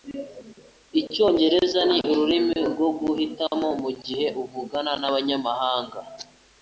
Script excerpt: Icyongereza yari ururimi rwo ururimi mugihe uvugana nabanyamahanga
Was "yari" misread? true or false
true